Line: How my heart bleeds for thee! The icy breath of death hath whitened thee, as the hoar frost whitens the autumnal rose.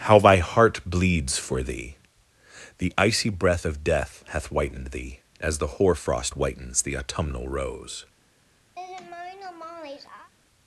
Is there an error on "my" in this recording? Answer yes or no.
yes